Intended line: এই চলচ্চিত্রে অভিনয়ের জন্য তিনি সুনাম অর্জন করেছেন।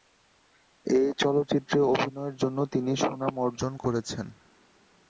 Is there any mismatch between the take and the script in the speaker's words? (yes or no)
no